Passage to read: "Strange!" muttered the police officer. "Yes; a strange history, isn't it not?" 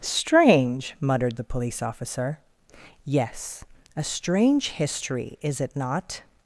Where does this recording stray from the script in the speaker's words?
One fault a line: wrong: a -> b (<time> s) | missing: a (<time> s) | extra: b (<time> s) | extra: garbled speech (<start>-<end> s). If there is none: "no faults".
wrong: isn't -> is (5.4 s)